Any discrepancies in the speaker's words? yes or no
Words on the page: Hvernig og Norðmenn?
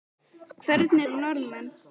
no